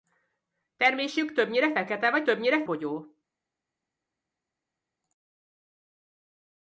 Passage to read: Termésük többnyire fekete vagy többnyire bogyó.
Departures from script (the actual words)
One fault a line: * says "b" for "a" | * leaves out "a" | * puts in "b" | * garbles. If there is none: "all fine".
all fine